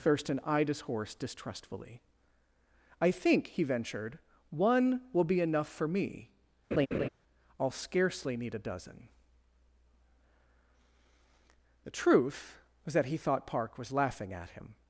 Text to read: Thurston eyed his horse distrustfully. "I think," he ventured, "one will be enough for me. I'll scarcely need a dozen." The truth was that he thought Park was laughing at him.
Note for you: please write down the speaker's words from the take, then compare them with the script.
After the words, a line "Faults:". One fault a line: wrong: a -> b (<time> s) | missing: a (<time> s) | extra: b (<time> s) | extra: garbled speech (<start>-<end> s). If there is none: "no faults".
Thurston eyed his horse distrustfully. "I think," he ventured, "one will be enough for me. I'll scarcely need a dozen." The truth was that he thought Park was laughing at him.
Faults:
no faults